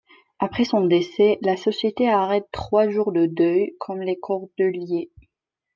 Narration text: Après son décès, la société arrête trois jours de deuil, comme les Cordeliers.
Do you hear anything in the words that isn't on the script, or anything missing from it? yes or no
no